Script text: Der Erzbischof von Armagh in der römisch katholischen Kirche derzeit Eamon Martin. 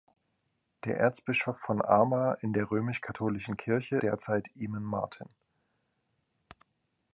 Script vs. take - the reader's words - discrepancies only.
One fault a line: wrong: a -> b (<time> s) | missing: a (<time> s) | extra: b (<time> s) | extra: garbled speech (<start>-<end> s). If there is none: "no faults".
no faults